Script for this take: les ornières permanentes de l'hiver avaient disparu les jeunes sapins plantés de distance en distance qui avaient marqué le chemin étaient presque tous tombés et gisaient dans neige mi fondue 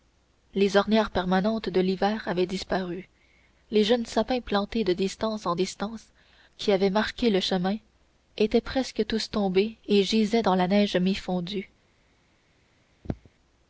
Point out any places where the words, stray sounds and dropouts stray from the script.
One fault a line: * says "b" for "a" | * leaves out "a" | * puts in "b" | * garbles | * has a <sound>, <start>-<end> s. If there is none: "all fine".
* puts in "la"
* has a throat clearing, 13.0-13.3 s